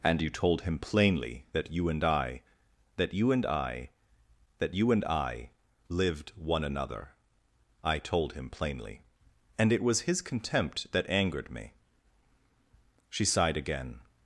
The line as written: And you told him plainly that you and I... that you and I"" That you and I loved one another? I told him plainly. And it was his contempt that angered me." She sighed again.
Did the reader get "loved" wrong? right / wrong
wrong